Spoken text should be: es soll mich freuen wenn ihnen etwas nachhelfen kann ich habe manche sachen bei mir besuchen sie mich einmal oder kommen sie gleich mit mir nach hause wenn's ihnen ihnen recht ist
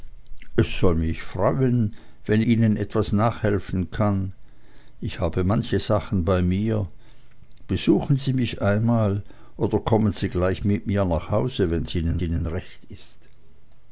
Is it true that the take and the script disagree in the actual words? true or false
false